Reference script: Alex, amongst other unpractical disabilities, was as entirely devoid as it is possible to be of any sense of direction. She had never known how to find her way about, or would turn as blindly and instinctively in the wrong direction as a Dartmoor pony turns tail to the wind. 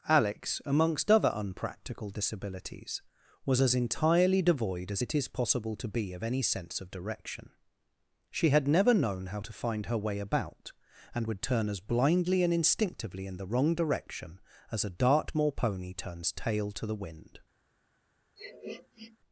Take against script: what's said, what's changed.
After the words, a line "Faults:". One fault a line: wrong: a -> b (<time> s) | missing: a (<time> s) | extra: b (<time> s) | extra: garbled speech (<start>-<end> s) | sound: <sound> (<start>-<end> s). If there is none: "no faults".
Alex, amongst other unpractical disabilities, was as entirely devoid as it is possible to be of any sense of direction. She had never known how to find her way about, and would turn as blindly and instinctively in the wrong direction as a Dartmoor pony turns tail to the wind.
Faults:
wrong: or -> and (11.1 s)
sound: sniff (18.4-19.2 s)